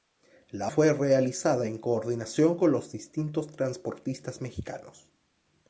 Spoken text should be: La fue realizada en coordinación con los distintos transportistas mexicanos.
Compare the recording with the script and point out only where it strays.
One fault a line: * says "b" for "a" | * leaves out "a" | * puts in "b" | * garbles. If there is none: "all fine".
all fine